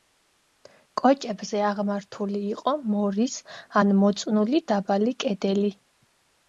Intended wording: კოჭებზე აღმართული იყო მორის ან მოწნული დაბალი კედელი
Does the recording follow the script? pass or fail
pass